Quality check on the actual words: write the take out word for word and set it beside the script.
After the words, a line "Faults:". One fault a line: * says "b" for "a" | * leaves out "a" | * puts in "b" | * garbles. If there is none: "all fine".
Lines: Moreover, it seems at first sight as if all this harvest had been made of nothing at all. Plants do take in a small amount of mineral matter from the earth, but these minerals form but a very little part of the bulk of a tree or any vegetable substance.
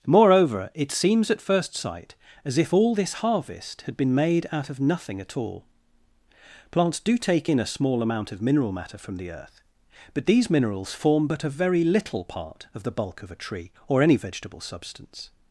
Moreover, it seems at first sight as if all this harvest had been made out of nothing at all. Plants do take in a small amount of mineral matter from the earth, but these minerals form but a very little part of the bulk of a tree or any vegetable substance.
Faults:
* puts in "out"